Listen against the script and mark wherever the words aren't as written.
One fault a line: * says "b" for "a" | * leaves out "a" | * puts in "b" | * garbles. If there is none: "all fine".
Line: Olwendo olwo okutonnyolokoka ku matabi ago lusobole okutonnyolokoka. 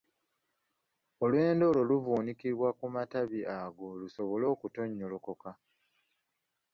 * says "luvuunikibwa" for "okutonnyolokoka"